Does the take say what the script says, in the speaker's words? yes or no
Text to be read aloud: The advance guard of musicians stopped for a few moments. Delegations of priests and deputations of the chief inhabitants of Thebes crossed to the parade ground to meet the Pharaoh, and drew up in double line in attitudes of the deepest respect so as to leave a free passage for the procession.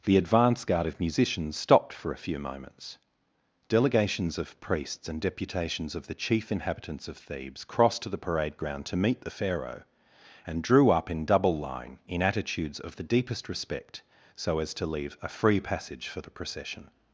yes